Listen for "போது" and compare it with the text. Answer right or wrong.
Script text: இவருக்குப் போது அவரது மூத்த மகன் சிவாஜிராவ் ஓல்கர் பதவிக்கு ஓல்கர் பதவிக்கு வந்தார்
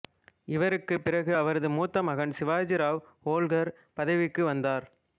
wrong